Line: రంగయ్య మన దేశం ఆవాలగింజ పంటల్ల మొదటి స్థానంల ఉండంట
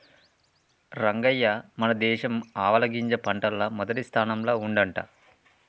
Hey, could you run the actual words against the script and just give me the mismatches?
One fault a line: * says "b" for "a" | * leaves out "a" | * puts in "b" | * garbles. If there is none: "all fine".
all fine